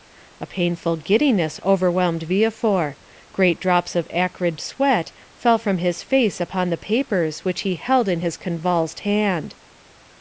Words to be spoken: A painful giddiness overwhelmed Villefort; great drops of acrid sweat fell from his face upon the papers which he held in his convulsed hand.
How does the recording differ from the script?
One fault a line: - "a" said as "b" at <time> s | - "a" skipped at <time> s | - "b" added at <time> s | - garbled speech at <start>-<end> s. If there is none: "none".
none